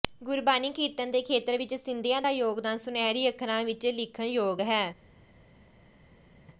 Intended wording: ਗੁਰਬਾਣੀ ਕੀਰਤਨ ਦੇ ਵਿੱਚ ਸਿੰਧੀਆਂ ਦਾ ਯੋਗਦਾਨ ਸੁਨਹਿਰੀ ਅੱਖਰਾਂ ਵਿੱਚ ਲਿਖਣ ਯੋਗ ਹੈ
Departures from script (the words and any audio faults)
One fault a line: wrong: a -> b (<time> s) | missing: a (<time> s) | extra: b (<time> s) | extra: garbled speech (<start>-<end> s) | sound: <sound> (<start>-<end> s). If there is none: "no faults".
extra: ਖੇਤਰ (1.2 s)